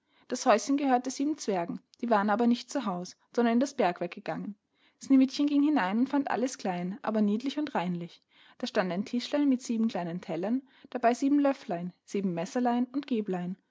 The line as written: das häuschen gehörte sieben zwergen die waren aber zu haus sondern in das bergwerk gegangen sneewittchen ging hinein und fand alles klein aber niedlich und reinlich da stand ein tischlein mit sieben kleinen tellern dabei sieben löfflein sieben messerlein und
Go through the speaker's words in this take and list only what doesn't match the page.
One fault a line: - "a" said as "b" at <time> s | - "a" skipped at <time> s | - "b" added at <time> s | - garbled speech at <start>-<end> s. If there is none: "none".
- "nicht" added at 2.5 s